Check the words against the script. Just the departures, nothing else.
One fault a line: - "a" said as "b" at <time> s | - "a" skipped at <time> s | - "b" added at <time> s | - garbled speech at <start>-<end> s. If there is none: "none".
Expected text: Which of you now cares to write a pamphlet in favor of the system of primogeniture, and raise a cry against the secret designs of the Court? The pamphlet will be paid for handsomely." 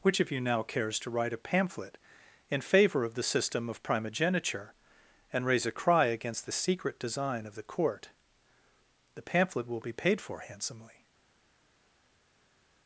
- "designs" said as "design" at 7.0 s